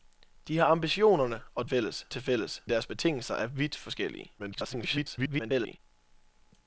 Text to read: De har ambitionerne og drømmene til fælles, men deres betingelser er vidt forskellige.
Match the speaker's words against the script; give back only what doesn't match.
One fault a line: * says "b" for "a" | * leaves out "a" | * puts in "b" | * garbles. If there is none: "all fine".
* says "fælles" for "drømmene"
* leaves out "men"
* garbles